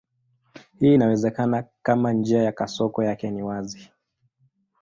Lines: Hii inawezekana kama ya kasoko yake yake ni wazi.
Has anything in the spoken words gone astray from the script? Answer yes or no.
yes